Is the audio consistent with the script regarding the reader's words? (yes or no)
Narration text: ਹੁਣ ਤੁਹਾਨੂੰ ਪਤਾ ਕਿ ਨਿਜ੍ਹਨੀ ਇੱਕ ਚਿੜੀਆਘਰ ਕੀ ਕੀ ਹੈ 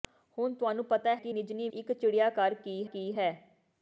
yes